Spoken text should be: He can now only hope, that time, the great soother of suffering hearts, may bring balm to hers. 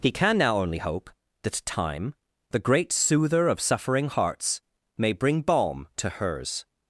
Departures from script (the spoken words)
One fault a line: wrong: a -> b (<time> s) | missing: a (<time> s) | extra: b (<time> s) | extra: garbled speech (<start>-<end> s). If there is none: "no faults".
no faults